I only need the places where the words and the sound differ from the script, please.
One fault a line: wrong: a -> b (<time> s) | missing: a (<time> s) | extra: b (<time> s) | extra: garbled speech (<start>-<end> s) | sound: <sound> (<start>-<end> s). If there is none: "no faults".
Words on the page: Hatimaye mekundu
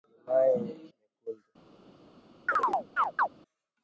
sound: chirp (2.5-3.3 s)